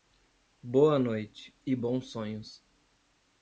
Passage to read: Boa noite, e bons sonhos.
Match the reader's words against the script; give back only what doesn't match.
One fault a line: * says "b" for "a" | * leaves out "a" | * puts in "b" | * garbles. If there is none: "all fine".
all fine